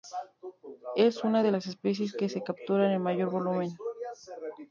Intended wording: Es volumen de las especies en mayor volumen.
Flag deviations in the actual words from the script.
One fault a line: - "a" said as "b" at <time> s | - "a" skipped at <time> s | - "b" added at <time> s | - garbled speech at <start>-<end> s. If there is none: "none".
- "volumen" said as "una" at 1.2 s
- "que se capturan" added at 2.1 s